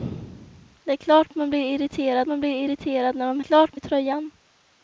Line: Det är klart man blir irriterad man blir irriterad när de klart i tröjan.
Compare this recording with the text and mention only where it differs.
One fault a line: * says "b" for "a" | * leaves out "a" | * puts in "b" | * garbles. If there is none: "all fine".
all fine